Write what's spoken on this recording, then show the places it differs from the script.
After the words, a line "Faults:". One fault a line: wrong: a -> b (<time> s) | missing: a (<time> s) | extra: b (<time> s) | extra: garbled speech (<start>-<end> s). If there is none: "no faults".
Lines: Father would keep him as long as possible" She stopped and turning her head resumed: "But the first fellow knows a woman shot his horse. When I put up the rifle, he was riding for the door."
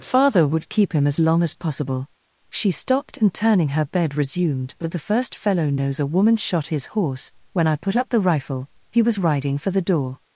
Father would keep him as long as possible" She stopped and turning her bed resumed: "But the first fellow knows a woman shot his horse. When I put up the rifle, he was riding for the door."
Faults:
wrong: head -> bed (3.9 s)